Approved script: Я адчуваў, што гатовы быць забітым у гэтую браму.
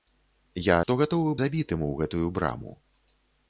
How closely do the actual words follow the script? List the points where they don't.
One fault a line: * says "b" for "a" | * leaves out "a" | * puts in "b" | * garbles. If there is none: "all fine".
* leaves out "адчуваў"
* leaves out "быць"